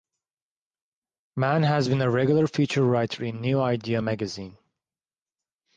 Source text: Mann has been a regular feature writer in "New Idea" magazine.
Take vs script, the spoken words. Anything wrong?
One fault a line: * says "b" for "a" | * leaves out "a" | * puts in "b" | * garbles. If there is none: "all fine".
all fine